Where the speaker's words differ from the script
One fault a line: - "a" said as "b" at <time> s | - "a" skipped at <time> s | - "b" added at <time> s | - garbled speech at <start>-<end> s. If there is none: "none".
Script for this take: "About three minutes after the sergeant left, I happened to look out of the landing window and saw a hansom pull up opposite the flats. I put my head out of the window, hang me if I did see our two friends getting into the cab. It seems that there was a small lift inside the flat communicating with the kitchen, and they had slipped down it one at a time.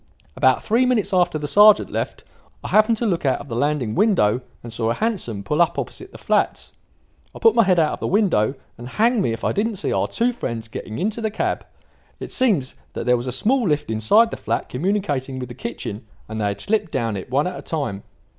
- "and" added at 8.8 s
- "did" said as "didn't" at 9.5 s